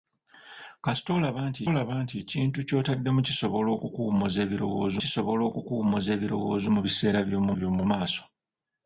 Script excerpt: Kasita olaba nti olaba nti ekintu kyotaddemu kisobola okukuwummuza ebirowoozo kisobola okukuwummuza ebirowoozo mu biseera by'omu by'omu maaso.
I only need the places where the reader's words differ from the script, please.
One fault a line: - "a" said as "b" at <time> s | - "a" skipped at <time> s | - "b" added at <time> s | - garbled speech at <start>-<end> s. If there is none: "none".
none